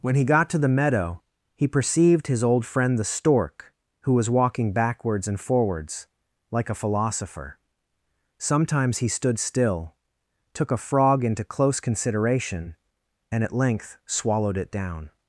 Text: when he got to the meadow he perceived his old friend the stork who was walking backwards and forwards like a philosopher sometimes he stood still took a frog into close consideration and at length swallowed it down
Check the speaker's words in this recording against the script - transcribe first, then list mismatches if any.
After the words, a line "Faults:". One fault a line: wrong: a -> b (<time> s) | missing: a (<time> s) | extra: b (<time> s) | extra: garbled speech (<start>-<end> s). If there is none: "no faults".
when he got to the meadow he perceived his old friend the stork who was walking backwards and forwards like a philosopher sometimes he stood still took a frog into close consideration and at length swallowed it down
Faults:
no faults